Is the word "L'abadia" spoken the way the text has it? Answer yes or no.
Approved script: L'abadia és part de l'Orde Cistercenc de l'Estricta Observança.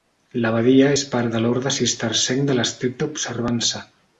yes